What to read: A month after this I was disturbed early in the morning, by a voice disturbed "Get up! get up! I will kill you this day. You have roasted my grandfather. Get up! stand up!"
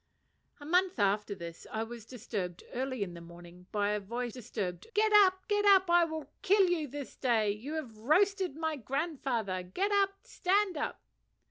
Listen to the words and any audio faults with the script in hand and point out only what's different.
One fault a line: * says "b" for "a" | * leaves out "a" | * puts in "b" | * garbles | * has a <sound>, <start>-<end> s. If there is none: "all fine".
all fine